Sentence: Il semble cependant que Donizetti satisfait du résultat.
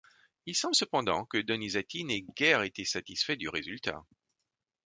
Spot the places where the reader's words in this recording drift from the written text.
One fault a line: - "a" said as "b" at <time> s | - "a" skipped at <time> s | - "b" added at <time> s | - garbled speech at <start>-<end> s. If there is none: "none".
- "n'ait guère été" added at 2.0 s